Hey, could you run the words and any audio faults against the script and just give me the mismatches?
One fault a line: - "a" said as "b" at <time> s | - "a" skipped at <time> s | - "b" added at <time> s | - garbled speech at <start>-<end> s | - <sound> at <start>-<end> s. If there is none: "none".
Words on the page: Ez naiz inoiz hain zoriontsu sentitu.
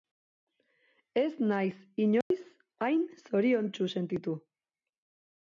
- dropout at 2.2-2.3 s